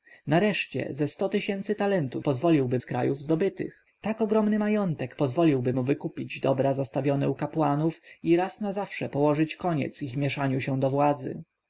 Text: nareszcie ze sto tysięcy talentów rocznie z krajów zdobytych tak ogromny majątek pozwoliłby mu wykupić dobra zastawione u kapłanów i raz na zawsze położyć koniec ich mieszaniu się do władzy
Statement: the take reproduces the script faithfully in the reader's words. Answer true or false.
false